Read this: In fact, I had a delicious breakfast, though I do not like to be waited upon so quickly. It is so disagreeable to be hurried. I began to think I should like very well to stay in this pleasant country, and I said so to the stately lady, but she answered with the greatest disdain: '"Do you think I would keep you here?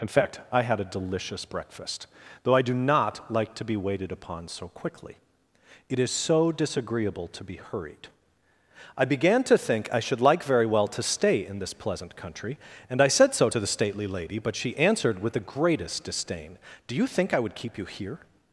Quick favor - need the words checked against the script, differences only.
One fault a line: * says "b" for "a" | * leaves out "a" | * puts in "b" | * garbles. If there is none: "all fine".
all fine